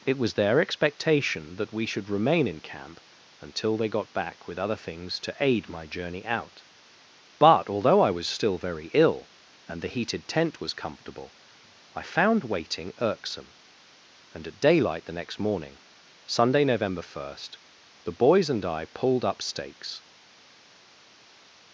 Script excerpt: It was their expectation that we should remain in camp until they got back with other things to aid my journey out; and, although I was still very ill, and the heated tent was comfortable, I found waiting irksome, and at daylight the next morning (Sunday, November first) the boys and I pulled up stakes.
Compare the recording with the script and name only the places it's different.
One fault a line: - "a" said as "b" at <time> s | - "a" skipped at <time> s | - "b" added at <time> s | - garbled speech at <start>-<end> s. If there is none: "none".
- "and" said as "but" at 7.4 s